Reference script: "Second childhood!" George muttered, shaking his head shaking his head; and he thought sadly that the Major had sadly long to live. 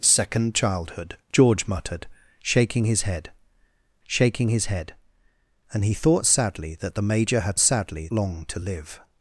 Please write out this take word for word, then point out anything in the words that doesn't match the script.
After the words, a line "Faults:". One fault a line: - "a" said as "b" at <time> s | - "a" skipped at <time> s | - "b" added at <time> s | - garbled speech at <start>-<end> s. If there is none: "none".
"Second childhood!" George muttered, shaking his head shaking his head; and he thought sadly that the Major had sadly long to live.
Faults:
none